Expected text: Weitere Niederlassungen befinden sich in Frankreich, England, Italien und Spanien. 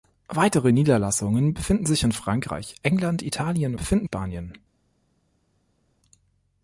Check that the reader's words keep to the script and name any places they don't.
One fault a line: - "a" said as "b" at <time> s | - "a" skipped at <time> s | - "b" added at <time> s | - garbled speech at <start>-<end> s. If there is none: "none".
- "und" said as "befinden" at 3.8 s